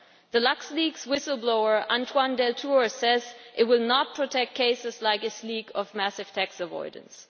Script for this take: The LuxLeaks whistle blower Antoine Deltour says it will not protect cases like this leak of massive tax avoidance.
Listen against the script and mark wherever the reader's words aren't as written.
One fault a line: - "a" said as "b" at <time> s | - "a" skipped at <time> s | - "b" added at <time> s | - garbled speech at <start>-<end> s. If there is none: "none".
none